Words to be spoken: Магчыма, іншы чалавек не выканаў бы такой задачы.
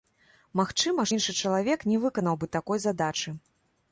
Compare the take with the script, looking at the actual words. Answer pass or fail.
pass